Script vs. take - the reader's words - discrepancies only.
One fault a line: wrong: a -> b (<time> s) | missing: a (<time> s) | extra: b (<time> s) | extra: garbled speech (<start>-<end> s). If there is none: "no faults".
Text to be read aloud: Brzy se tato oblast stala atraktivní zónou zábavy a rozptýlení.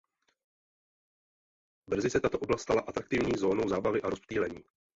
no faults